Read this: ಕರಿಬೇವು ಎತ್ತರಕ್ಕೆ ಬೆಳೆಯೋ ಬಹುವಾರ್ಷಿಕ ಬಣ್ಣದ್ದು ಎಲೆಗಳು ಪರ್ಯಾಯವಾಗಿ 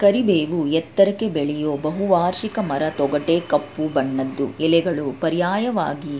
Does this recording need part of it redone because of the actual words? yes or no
yes